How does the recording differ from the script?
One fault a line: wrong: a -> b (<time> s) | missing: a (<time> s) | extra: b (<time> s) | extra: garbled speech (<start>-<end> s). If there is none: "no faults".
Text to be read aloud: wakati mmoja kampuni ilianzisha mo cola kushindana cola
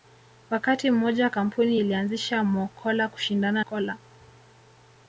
no faults